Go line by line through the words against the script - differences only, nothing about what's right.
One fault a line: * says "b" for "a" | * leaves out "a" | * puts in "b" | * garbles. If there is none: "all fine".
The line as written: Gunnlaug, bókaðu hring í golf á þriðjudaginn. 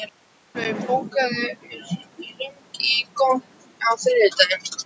all fine